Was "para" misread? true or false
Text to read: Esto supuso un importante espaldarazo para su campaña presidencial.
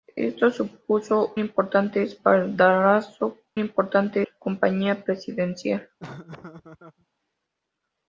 true